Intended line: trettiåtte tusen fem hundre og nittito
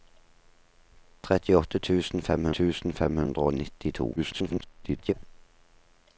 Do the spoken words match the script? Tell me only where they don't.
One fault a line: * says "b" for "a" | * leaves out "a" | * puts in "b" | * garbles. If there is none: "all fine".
* puts in "tusen fem"
* garbles